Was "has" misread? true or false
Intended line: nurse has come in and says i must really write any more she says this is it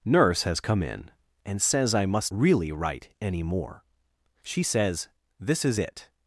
false